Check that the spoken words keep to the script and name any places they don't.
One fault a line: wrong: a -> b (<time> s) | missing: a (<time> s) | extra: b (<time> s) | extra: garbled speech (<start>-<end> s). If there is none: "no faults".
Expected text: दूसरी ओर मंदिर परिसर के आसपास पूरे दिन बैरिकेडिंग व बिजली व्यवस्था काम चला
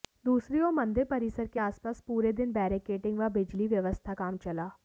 no faults